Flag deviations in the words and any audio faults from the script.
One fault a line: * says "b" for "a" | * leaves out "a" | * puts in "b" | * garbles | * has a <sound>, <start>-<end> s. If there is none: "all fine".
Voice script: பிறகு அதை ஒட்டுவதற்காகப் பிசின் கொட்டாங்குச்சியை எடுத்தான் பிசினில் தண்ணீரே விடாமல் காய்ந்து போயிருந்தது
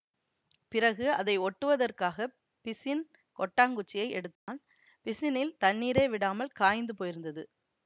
* has a dropout, 4.4-4.5 s